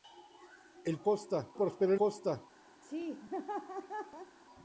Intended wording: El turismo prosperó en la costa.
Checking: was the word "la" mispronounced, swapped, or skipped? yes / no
yes